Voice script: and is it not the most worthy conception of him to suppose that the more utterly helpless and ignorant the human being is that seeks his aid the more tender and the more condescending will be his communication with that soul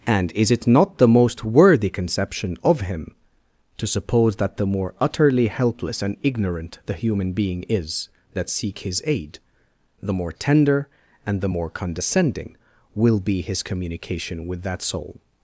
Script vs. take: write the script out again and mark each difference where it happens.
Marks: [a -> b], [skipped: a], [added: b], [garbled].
and is it not the most worthy conception of him to suppose that the more utterly helpless and ignorant the human being is that [seeks -> seek] his aid the more tender and the more condescending will be his communication with that soul